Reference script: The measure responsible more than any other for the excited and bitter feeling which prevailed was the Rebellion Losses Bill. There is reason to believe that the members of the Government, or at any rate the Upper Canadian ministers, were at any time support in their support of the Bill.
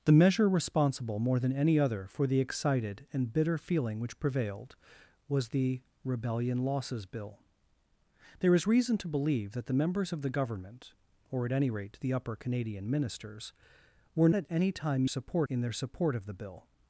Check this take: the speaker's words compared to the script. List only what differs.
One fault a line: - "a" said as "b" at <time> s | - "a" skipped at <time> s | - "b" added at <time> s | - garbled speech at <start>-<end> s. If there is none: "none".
none